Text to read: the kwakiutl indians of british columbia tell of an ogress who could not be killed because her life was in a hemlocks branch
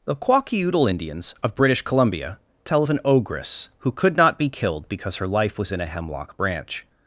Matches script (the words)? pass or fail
fail